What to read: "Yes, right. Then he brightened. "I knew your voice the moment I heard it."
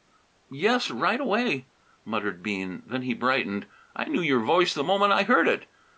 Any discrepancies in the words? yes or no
yes